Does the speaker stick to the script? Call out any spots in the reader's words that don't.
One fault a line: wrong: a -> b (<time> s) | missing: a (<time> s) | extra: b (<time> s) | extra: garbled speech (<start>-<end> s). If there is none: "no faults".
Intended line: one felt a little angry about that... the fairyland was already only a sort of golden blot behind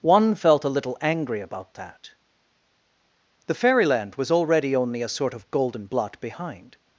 no faults